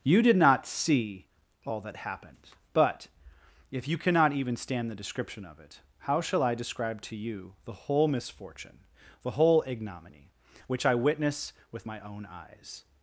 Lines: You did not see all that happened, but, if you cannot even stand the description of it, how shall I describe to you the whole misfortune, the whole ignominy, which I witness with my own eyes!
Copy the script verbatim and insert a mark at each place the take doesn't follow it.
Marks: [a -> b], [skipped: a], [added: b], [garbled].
You did not see all that happened, but, if you cannot even stand the description of it, how shall I describe to you the whole misfortune, the whole ignominy, which I witness with my own eyes!